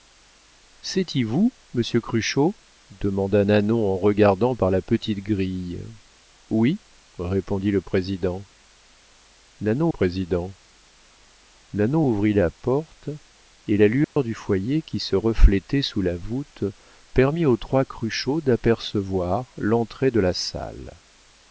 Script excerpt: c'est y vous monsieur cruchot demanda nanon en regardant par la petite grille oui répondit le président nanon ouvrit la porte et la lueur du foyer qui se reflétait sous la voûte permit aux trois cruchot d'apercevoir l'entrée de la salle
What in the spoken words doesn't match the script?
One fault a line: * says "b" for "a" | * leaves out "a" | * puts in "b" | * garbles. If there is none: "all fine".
* puts in "président nanon"